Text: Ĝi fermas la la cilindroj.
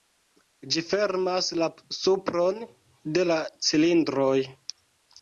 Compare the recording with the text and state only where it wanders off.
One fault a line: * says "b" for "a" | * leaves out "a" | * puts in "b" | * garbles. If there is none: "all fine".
* puts in "supron de"